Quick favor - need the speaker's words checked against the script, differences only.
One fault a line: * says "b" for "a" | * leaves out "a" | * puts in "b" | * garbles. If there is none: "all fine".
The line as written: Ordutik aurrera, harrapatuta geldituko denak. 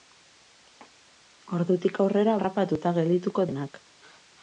all fine